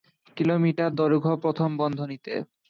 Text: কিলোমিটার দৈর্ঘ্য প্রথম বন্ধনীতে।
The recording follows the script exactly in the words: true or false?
true